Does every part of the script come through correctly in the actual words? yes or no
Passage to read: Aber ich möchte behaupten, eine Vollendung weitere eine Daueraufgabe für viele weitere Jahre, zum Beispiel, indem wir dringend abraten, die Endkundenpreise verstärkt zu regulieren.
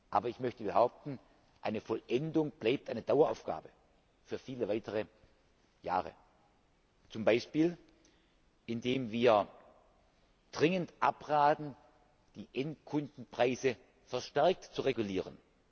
no